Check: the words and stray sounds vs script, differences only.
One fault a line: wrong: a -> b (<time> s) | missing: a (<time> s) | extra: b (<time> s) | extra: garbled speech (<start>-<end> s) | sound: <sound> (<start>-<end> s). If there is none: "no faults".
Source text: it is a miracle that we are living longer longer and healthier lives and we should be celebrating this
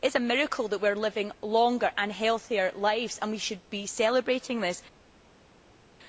missing: longer (1.9 s)